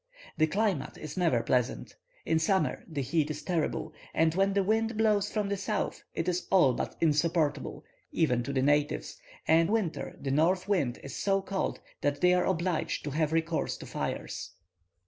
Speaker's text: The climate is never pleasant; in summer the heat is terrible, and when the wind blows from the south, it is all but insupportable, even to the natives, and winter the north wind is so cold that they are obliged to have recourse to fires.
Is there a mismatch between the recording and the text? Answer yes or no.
no